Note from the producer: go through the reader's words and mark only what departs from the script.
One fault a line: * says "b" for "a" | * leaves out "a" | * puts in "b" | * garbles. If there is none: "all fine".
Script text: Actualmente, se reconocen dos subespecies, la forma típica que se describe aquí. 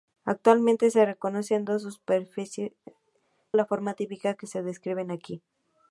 all fine